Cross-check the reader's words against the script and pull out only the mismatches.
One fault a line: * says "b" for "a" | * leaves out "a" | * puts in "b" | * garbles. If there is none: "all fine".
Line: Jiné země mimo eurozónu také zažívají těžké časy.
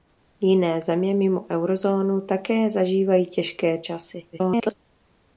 * garbles